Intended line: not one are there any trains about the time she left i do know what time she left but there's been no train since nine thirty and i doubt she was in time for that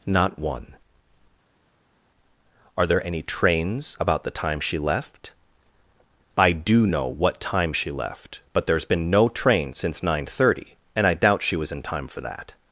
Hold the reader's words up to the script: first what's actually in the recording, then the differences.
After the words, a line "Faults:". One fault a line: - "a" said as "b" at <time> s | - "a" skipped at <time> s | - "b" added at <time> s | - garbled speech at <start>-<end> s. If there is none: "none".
not one are there any trains about the time she left i do know what time she left but there's been no train since nine thirty and i doubt she was in time for that
Faults:
none